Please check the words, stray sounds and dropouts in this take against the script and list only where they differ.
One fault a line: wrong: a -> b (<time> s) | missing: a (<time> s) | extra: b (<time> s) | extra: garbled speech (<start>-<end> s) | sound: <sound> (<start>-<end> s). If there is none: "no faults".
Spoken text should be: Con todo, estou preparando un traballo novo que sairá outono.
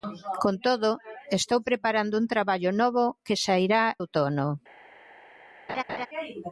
sound: laugh (5.7-6.1 s)